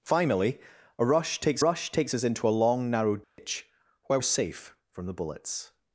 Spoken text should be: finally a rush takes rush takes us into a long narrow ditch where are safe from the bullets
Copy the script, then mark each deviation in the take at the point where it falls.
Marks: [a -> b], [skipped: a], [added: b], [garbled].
finally a rush takes rush takes us into a long narrow ditch where are safe from the bullets